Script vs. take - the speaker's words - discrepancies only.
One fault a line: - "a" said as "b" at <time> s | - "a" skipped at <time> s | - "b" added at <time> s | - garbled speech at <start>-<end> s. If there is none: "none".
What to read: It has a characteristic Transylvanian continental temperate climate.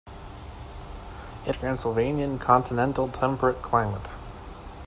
- "has a characteristic" skipped at 1.6 s